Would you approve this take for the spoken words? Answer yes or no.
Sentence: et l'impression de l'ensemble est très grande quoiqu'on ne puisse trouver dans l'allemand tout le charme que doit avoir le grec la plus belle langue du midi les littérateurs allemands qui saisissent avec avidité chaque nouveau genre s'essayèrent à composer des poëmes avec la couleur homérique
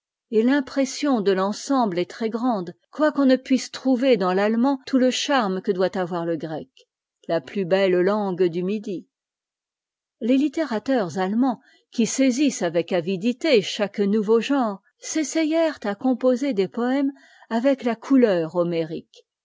yes